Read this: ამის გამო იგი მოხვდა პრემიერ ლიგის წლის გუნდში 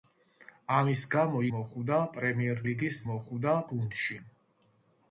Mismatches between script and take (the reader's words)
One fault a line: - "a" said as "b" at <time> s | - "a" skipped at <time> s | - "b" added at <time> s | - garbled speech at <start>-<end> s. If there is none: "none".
- "იგი" skipped at 1.4 s
- "წლის" said as "მოხვდა" at 3.1 s